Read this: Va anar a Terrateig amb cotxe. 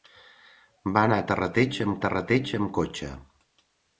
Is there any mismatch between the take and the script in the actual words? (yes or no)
yes